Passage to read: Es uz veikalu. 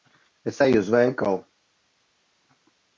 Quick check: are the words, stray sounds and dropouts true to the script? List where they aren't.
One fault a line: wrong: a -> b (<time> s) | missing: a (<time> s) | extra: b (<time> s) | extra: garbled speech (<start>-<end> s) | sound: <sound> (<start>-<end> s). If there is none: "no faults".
extra: eju (0.6 s)